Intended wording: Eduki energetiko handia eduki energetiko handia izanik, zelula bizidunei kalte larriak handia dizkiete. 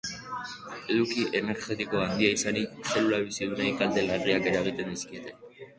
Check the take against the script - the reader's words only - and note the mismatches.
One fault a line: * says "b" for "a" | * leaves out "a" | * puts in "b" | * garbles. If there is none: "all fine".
* leaves out "eduki energetiko handia"
* says "eragiten" for "handia"